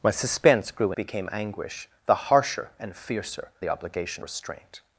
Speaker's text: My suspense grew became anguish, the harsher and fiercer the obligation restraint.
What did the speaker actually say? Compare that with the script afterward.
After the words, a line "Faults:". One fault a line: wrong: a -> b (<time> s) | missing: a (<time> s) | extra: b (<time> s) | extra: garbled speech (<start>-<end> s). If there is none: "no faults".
My suspense grew became anguish, the harsher and fiercer the obligation restraint.
Faults:
no faults